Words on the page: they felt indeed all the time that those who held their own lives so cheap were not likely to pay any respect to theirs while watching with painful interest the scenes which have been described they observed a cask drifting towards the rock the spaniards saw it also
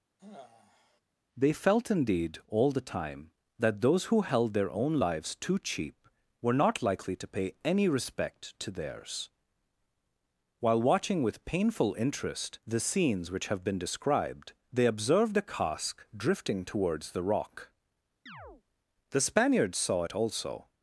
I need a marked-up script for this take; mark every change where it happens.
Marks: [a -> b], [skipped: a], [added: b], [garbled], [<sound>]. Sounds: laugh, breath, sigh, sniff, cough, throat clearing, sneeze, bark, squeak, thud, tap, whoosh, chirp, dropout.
[sigh] they felt indeed all the time that those who held their own lives [so -> too] cheap were not likely to pay any respect to theirs while watching with painful interest the scenes which have been described they observed a cask drifting towards the rock [chirp] the spaniards saw it also